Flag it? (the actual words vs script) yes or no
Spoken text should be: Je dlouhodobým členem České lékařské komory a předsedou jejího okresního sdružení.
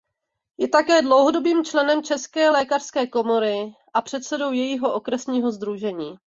yes